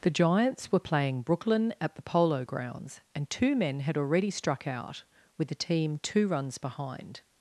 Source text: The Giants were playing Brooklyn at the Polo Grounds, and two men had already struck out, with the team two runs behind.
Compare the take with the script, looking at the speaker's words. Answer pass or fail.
pass